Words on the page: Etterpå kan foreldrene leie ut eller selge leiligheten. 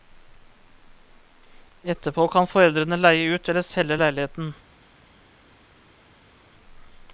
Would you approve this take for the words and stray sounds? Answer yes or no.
yes